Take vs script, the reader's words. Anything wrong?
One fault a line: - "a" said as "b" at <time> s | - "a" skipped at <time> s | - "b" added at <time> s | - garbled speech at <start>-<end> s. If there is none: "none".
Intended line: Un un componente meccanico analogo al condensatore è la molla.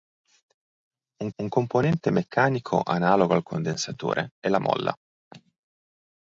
none